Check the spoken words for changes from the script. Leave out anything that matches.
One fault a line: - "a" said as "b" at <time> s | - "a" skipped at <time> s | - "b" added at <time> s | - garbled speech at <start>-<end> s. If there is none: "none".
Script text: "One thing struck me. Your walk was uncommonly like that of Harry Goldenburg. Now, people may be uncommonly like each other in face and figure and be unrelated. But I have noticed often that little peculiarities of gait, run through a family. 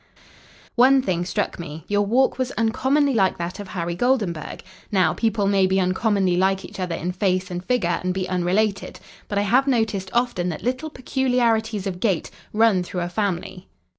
none